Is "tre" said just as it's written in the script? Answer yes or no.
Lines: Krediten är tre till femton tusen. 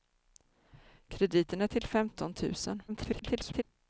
no